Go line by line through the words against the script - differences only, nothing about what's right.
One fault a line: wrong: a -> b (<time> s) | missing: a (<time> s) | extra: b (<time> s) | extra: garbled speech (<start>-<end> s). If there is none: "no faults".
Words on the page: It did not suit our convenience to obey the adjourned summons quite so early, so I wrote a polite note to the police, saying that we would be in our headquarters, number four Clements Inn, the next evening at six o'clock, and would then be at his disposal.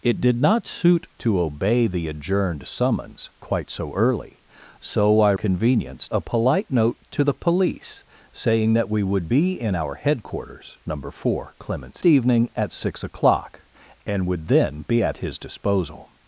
missing: our convenience (1.1 s)
wrong: wrote -> convenience (5.3 s)
missing: Inn the next (12.0 s)